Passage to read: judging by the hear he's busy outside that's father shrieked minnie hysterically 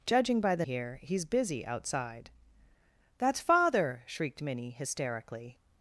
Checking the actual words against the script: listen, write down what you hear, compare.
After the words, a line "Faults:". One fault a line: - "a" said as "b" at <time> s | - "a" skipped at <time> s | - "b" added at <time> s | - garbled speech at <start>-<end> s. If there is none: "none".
judging by the hear he's busy outside that's father shrieked minnie hysterically
Faults:
none